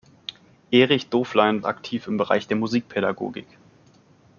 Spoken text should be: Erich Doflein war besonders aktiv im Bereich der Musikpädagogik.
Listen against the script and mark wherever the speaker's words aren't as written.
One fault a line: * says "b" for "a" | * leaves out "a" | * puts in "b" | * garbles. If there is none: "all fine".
* leaves out "war besonders"